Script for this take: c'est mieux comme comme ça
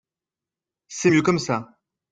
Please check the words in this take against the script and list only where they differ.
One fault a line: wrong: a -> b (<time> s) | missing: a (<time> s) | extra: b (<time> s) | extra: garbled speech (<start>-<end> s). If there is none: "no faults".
missing: comme (1.4 s)